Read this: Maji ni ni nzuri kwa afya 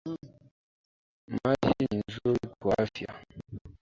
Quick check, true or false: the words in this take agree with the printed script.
false